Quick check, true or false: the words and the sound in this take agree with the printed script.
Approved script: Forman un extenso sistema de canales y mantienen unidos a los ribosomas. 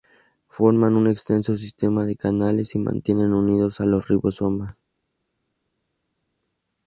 true